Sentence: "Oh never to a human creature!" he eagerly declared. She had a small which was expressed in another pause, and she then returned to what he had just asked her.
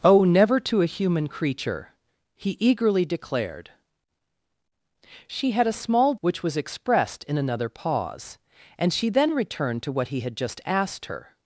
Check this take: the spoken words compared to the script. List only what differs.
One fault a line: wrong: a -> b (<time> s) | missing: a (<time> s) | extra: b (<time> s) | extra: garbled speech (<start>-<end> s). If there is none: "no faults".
no faults